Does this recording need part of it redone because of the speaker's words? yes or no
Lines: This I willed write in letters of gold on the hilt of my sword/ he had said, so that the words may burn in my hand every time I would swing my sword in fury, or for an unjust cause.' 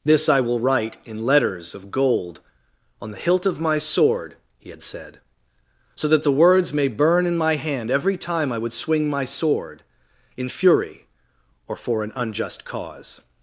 yes